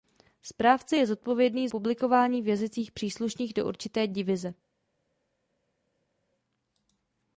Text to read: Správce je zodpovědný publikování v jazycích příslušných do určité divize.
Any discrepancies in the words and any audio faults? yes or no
no